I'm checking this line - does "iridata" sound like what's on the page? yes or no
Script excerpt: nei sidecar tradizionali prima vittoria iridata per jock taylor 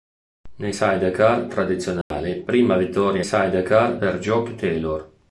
no